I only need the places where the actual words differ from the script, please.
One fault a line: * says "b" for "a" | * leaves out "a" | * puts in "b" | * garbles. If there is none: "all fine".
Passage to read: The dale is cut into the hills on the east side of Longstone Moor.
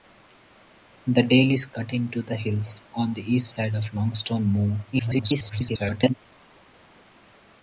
* garbles